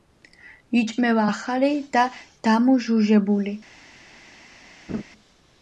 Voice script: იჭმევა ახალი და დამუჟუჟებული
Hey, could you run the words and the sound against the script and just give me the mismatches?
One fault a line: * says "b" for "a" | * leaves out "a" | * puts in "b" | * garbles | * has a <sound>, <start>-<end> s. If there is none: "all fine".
* has a laugh, 4.9-5.0 s